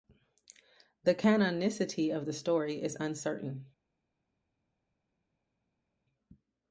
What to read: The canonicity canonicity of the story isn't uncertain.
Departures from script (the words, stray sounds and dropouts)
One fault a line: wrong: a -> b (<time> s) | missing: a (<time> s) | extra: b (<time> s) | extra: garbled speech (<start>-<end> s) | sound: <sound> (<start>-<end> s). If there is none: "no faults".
missing: canonicity (2.1 s)
wrong: isn't -> is (2.8 s)